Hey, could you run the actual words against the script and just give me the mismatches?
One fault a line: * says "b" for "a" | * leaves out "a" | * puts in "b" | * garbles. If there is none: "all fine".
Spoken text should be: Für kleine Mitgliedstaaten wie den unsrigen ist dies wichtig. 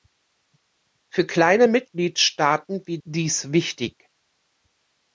* leaves out "den unsrigen ist"